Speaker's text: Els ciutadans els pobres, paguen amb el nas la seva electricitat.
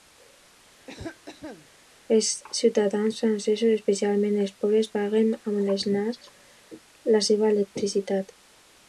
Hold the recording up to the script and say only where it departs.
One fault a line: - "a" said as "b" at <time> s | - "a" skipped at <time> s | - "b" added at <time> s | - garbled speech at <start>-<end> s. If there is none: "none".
- "francesos especialment" added at 3.2 s